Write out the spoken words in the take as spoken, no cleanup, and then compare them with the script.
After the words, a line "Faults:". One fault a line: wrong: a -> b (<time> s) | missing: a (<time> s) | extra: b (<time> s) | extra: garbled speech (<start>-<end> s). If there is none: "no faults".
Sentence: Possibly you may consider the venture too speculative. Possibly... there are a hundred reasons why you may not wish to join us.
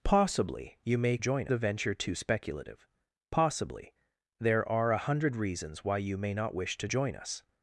Possibly you may join the venture too speculative. Possibly... there are a hundred reasons why you may not wish to join us.
Faults:
wrong: consider -> join (1.2 s)